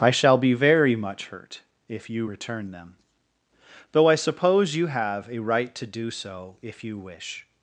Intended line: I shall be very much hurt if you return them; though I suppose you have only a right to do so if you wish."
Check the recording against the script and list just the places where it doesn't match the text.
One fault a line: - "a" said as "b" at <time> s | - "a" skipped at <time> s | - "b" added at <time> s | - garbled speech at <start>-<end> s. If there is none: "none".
- "only" skipped at 5.3 s